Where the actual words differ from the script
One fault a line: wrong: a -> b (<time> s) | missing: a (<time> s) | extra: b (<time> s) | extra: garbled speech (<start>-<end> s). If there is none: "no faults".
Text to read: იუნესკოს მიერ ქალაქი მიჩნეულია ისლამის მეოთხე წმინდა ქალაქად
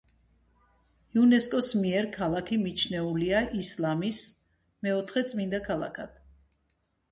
no faults